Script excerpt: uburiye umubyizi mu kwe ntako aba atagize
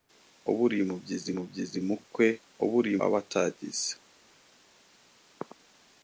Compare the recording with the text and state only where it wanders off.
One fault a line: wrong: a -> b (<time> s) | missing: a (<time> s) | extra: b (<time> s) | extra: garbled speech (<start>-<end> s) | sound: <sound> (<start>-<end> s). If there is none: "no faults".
extra: umubyizi (1.3 s)
wrong: ntako -> uburiye (2.6 s)